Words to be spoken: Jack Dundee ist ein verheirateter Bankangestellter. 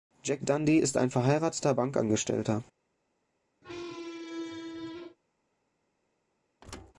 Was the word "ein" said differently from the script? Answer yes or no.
no